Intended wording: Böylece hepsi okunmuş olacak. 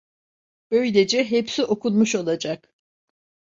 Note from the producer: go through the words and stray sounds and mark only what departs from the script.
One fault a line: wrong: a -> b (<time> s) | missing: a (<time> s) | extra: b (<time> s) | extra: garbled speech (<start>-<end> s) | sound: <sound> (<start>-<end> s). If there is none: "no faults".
no faults